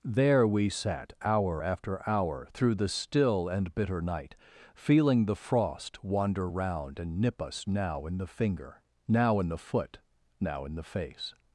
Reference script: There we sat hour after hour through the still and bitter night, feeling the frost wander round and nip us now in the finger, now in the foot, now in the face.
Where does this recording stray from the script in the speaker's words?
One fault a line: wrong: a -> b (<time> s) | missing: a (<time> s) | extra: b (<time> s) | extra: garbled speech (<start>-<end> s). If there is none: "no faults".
no faults